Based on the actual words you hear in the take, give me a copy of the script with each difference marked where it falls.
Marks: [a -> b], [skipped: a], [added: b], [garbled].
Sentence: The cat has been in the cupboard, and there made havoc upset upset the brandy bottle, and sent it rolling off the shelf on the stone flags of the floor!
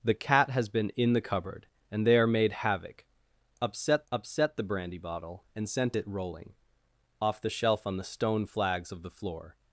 The cat has been in the cupboard, and there made havoc upset upset the brandy bottle, and sent it rolling off the shelf on the stone flags of the floor!